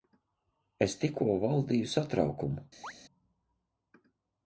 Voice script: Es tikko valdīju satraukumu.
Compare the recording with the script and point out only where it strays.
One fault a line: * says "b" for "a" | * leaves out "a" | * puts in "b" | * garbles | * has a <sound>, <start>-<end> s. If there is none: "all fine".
* has a chirp, 2.8-2.9 s